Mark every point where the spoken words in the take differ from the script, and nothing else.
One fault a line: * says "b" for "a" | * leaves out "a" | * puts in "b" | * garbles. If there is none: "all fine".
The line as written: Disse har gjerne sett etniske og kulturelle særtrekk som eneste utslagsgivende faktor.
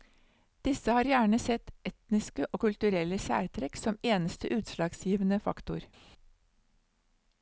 all fine